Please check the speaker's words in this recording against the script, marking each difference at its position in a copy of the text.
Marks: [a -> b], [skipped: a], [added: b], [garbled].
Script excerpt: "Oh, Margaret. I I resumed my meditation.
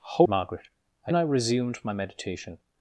"Oh, Margaret. I I resumed my meditation.